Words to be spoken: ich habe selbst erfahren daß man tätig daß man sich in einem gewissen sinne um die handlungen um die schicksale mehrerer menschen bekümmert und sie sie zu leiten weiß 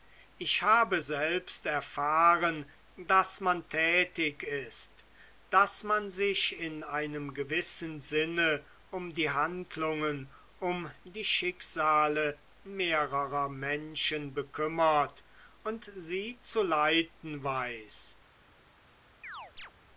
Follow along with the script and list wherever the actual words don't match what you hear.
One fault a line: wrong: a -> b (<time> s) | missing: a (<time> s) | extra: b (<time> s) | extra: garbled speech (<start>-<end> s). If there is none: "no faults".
extra: ist (4.4 s)
missing: sie (16.4 s)